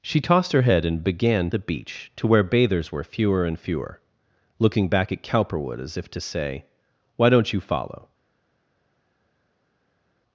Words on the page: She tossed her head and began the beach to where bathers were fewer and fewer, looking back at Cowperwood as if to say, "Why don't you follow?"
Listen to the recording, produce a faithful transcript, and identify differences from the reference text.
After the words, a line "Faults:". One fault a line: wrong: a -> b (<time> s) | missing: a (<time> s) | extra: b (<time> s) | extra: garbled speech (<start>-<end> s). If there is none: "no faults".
She tossed her head and began the beach to where bathers were fewer and fewer, looking back at Cowperwood as if to say, "Why don't you follow?"
Faults:
no faults